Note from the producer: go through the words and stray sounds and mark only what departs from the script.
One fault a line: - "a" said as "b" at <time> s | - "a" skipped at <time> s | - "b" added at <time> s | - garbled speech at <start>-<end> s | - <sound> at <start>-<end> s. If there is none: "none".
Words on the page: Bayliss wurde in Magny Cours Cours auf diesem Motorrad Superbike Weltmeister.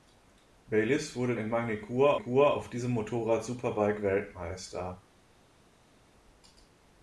none